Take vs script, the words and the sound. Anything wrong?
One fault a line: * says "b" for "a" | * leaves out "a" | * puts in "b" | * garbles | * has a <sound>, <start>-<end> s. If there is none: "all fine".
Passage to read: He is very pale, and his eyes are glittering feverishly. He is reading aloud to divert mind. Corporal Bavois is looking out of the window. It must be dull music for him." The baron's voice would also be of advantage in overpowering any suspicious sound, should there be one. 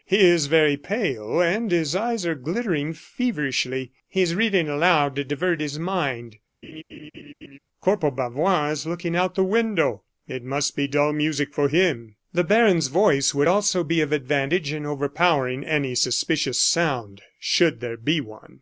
* puts in "his"
* has a laugh, 6.6-7.6 s